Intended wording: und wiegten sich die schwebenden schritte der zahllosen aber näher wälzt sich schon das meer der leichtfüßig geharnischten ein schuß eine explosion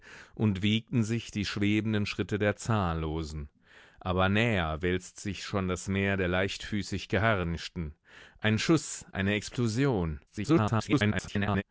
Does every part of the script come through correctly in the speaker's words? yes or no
no